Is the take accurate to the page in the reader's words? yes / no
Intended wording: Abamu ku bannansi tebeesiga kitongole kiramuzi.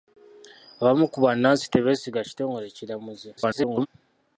no